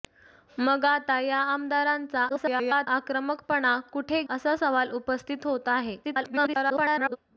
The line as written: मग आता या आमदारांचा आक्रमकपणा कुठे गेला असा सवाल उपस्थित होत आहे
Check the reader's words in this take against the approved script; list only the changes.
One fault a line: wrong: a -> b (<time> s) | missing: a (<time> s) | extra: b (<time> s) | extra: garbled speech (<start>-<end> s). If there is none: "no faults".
extra: garbled speech (2.3-2.9 s)
missing: गेला (4.2 s)
extra: garbled speech (6.0-7.2 s)